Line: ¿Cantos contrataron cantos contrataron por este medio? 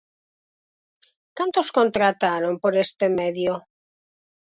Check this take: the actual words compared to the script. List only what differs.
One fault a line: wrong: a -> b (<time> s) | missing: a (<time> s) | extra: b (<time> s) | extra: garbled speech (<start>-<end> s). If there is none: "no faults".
missing: cantos contrataron (2.5 s)